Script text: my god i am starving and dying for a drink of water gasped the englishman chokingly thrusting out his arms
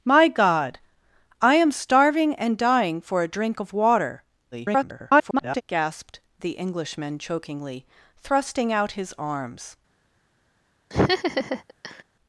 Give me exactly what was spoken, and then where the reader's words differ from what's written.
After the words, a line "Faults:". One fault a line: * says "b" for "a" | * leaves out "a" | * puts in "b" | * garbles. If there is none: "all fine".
my god i am starving and dying for a drink of water [garbled] gasped the englishman chokingly thrusting out his arms
Faults:
* garbles